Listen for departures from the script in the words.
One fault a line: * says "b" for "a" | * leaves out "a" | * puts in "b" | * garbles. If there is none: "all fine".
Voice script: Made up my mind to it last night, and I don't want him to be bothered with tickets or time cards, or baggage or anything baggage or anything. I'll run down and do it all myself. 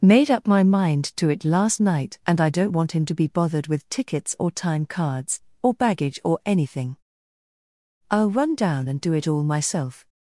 * leaves out "baggage or anything"